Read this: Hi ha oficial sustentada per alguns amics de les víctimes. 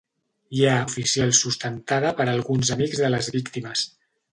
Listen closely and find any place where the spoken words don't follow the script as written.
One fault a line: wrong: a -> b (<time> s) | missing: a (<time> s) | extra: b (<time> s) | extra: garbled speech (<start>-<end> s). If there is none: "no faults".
no faults